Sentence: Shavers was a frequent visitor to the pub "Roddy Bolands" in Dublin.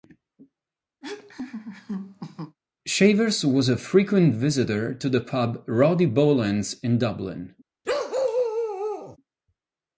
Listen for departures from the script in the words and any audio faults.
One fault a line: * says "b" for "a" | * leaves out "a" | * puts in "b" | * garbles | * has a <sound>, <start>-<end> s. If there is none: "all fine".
* has a laugh, 1.0-2.6 s
* has a bark, 7.8-9.2 s